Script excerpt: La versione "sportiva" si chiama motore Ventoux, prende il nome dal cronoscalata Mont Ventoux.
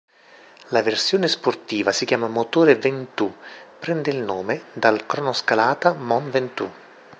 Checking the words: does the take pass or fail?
pass